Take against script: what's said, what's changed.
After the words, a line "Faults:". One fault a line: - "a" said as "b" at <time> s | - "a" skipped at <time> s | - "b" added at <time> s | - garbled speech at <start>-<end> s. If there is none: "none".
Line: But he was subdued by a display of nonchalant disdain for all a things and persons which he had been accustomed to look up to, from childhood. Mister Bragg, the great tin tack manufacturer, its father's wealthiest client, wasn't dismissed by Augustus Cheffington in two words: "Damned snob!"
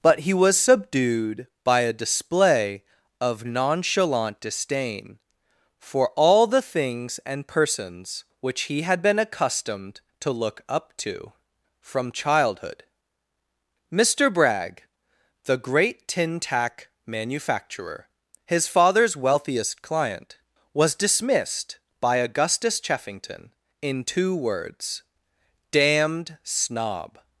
But he was subdued by a display of nonchalant disdain for all the things and persons which he had been accustomed to look up to, from childhood. Mister Bragg, the great tin tack manufacturer, his father's wealthiest client, was dismissed by Augustus Cheffington in two words: "Damned snob!"
Faults:
- "a" said as "the" at 6.5 s
- "its" said as "his" at 18.4 s
- "wasn't" said as "was" at 20.7 s